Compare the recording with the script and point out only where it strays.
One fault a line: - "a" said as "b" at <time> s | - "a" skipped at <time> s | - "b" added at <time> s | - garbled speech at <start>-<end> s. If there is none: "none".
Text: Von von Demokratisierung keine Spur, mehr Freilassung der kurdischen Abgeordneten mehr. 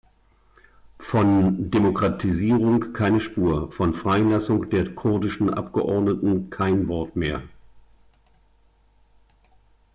- "von" skipped at 1.7 s
- "mehr" said as "von" at 3.7 s
- "kein Wort" added at 6.5 s